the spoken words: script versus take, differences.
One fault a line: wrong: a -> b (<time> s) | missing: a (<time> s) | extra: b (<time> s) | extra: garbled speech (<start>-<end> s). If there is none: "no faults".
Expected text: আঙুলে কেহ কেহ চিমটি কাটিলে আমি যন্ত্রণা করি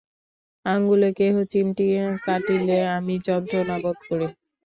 missing: কেহ (1.4 s)
extra: বোধ (3.8 s)